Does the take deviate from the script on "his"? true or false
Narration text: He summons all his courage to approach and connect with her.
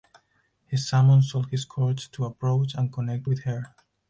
false